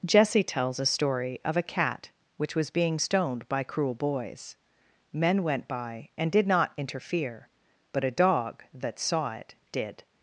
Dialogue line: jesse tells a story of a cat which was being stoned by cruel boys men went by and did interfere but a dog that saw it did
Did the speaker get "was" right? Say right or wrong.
right